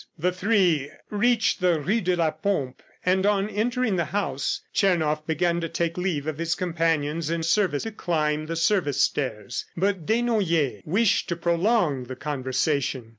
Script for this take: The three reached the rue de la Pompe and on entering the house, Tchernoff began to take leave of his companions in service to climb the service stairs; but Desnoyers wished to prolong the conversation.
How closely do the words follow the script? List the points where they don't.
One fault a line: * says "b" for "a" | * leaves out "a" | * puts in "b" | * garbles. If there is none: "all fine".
all fine